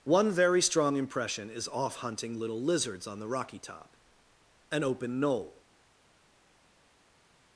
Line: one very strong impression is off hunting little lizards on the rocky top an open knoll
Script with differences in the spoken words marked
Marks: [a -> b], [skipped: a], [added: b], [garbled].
one very strong impression is off hunting little lizards on the rocky top an open knoll